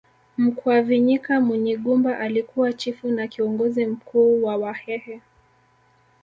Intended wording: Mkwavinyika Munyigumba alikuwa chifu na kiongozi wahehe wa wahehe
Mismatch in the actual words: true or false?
true